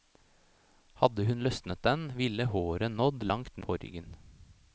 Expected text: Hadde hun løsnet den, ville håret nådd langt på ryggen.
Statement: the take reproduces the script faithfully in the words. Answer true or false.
true